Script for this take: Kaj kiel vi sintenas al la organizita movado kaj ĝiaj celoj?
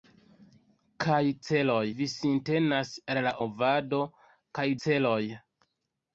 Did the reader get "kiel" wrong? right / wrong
wrong